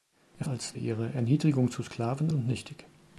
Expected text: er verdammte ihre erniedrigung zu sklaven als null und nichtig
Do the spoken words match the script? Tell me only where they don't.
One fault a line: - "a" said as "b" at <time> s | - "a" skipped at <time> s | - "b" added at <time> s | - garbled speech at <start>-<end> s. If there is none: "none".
- "verdammte" said as "als" at 0.5 s
- "als null" skipped at 2.3 s